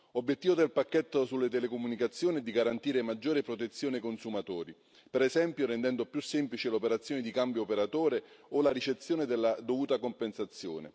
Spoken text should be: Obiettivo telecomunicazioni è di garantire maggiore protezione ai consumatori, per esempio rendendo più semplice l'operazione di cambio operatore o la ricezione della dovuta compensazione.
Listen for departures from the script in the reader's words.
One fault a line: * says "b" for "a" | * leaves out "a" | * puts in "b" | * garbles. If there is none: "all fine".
* puts in "del pacchetto sulle"